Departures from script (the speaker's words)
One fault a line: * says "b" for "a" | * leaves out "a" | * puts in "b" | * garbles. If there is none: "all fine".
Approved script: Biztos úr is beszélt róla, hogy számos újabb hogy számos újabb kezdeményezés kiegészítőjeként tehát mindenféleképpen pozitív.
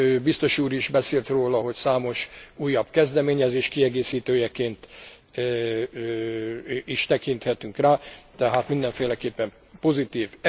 * says "kezdeményezés kiegészítőjeként is tekinthetünk rá" for "hogy számos újabb kezdeményezés kiegészítőjeként"